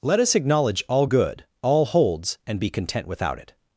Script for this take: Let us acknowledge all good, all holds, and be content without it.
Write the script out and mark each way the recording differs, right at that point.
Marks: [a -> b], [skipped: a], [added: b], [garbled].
Let us acknowledge all good, all holds, and be content without it.